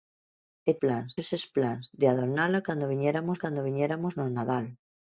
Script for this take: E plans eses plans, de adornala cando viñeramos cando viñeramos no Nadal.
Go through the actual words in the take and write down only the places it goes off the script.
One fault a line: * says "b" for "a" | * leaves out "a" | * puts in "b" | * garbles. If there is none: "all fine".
all fine